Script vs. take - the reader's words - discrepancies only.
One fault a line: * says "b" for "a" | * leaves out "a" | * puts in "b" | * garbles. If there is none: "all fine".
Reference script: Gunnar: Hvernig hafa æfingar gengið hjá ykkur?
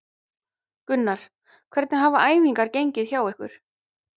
all fine